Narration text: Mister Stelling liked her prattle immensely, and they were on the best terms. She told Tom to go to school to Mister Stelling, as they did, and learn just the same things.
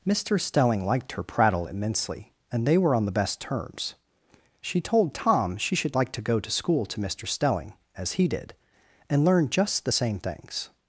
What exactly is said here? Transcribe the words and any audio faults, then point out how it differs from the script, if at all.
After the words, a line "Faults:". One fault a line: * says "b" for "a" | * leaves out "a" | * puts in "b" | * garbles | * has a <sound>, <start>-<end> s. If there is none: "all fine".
Mister Stelling liked her prattle immensely, and they were on the best terms. She told Tom she should like to go to school to Mister Stelling, as he did, and learn just the same things.
Faults:
* puts in "she should like"
* says "he" for "they"